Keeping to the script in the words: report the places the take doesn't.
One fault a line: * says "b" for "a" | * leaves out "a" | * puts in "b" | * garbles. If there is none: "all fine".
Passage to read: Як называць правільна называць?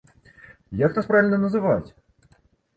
* says "нас" for "называць"